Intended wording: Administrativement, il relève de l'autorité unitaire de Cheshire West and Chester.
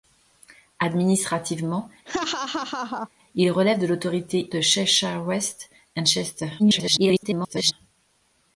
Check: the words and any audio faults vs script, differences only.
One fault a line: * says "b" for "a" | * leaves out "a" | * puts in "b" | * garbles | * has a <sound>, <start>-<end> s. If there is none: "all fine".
* has a laugh, 2.1-3.1 s
* leaves out "unitaire"
* garbles